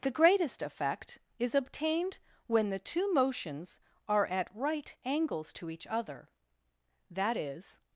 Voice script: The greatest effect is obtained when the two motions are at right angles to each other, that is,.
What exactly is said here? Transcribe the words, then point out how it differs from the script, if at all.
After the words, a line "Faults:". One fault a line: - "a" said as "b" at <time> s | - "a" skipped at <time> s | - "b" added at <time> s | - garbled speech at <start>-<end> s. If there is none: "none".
The greatest effect is obtained when the two motions are at right angles to each other, that is,.
Faults:
none